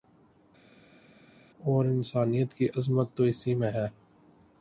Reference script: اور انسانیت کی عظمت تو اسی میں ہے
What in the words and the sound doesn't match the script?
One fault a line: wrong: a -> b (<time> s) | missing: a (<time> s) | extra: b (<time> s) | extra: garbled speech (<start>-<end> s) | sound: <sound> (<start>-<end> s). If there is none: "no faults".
no faults